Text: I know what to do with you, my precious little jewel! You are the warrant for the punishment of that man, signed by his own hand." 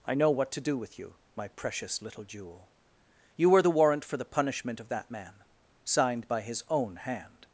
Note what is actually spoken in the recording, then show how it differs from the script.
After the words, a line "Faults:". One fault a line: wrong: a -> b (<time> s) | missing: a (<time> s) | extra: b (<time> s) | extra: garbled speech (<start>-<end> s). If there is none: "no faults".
I know what to do with you, my precious little jewel! You were the warrant for the punishment of that man, signed by his own hand."
Faults:
wrong: are -> were (3.5 s)